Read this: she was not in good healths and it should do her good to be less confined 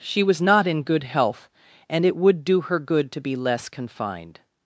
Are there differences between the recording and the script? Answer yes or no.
yes